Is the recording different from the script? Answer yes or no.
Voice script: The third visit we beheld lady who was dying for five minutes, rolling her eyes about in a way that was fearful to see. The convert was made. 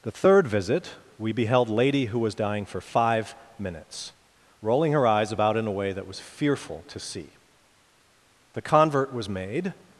no